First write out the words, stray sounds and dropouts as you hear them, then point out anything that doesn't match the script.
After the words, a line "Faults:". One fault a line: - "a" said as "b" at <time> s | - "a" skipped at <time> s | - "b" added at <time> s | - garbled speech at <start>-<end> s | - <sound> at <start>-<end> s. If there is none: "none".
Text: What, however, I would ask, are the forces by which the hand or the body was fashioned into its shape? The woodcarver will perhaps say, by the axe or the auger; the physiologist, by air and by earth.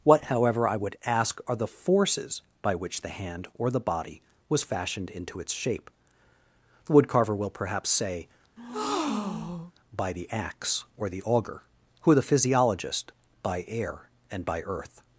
What, however, I would ask, are the forces by which the hand or the body was fashioned into its shape? The woodcarver will perhaps say, by the axe or the auger; who the physiologist, by air and by earth.
Faults:
- breath at 8.6-9.7 s
- "who" added at 12.0 s